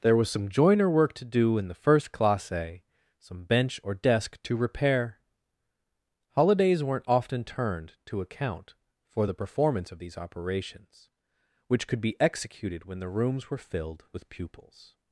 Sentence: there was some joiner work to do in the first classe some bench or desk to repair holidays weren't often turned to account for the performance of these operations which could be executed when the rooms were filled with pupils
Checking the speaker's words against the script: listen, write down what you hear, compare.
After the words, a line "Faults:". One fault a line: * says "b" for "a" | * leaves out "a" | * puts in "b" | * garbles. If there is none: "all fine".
there was some joiner work to do in the first classe some bench or desk to repair holidays weren't often turned to account for the performance of these operations which could be executed when the rooms were filled with pupils
Faults:
all fine